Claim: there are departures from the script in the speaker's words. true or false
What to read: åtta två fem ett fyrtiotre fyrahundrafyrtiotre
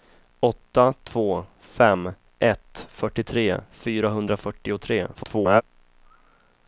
true